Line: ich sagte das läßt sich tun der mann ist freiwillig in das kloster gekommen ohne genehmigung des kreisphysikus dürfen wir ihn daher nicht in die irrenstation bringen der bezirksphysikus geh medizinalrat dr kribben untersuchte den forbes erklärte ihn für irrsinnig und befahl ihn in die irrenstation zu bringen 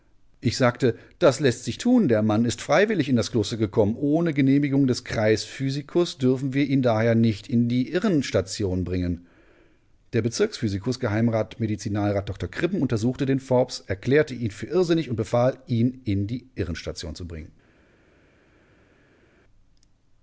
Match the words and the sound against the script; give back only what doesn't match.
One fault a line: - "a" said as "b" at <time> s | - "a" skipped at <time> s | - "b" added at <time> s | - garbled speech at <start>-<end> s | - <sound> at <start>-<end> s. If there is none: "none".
none